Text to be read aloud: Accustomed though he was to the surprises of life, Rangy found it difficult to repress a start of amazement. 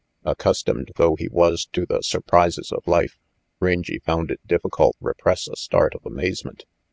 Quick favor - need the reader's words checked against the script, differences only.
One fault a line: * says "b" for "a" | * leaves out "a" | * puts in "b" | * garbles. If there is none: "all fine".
* leaves out "to"